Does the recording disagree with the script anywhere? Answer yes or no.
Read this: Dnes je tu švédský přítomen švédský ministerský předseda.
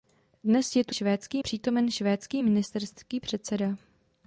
no